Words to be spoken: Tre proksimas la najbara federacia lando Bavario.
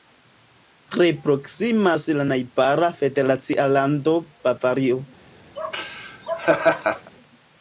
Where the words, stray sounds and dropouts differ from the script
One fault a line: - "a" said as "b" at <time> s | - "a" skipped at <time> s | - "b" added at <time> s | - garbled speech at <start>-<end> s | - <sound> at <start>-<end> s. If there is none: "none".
- laugh at 5.6-7.1 s